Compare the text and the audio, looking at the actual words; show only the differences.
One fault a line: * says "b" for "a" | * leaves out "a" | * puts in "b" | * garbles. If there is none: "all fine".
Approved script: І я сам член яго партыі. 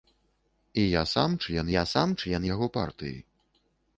* puts in "я сам член"